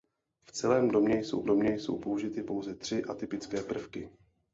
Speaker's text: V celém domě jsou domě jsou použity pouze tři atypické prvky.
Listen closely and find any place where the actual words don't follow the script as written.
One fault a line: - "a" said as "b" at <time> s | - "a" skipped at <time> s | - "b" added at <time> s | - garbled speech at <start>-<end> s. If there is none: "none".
none